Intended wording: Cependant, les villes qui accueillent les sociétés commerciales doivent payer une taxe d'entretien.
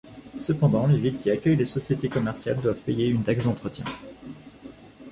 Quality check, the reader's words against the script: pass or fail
pass